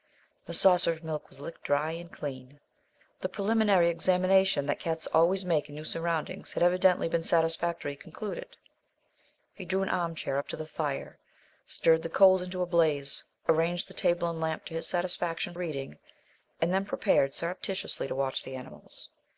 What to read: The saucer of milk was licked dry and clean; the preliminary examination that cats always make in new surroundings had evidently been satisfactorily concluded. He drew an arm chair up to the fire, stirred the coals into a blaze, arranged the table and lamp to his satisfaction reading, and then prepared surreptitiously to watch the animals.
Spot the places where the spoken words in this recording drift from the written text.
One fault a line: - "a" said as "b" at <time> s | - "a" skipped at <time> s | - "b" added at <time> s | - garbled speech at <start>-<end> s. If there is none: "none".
none